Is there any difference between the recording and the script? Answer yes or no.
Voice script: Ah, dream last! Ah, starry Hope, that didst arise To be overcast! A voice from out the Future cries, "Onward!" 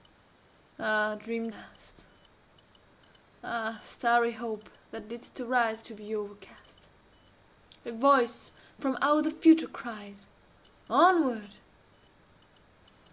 no